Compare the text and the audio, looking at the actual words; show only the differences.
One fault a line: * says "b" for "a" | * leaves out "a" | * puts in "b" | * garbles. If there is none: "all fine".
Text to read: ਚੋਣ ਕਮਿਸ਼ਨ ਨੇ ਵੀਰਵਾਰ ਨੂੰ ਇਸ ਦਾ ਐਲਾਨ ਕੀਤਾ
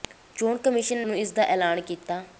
* leaves out "ਨੇ ਵੀਰਵਾਰ"